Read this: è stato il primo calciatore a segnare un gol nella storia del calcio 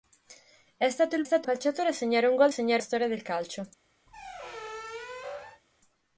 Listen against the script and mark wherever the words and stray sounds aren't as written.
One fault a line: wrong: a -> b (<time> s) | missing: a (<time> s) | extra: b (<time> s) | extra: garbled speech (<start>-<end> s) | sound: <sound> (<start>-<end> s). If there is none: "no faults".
wrong: primo -> stato (1.2 s)
wrong: nella -> segnare (2.5 s)
sound: squeak (4.1-5.6 s)